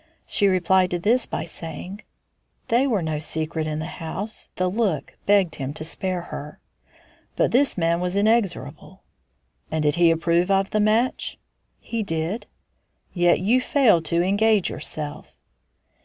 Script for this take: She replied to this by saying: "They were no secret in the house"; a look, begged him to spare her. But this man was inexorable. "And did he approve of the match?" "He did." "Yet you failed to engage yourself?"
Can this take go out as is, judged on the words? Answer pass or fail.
pass